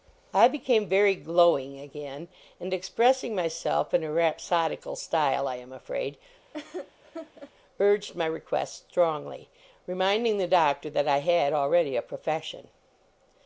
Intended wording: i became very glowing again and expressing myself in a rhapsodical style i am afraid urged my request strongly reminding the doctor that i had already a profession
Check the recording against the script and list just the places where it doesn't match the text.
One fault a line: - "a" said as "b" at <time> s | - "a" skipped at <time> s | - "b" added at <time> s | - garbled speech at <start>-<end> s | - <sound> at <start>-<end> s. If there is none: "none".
- laugh at 6.5-7.5 s